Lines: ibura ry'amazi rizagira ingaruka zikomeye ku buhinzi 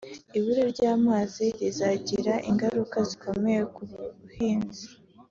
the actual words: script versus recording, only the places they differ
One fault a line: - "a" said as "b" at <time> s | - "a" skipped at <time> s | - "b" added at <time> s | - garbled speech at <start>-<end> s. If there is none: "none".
none